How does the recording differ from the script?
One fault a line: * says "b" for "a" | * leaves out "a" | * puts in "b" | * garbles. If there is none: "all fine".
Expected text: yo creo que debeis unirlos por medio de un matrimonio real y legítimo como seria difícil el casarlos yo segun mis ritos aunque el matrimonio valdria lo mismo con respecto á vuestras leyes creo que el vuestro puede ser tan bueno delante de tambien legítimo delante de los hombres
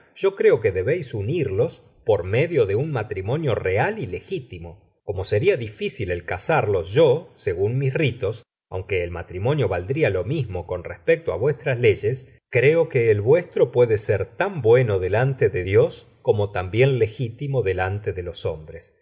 * puts in "dios como"